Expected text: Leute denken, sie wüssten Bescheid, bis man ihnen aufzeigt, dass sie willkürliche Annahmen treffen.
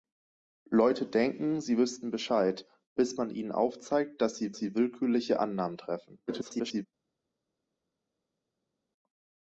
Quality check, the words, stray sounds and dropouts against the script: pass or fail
fail